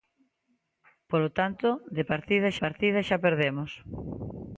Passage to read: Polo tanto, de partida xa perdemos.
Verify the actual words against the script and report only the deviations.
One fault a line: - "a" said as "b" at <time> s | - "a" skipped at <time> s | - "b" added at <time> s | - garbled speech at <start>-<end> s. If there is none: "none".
- "partida" added at 2.6 s